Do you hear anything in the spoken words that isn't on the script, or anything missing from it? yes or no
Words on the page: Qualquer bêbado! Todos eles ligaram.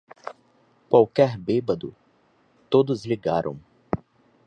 yes